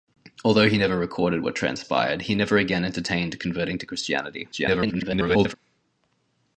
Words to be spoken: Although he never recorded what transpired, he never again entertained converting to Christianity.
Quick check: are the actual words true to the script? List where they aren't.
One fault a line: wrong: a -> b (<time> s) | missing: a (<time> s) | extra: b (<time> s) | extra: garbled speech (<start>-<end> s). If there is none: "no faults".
extra: garbled speech (4.5-5.5 s)